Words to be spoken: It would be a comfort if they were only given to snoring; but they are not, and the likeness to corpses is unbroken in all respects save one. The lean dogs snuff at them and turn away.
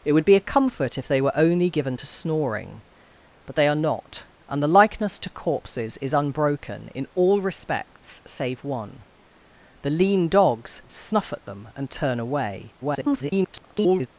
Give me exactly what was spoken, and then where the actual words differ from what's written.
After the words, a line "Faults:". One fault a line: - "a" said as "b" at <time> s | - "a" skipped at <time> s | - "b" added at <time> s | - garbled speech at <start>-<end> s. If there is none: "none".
It would be a comfort if they were only given to snoring; but they are not, and the likeness to corpses is unbroken in all respects save one. The lean dogs snuff at them and turn away. [garbled]
Faults:
- garbled speech at 12.8-14.1 s